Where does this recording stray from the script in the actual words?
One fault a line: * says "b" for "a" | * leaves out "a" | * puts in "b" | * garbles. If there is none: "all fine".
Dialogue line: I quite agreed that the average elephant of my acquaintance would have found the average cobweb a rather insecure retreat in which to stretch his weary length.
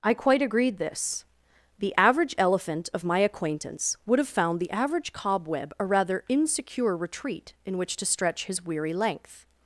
* says "this" for "that"